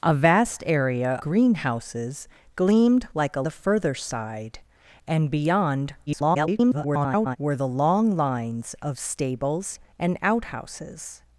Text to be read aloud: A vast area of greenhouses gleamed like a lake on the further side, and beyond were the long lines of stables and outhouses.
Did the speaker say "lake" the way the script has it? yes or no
no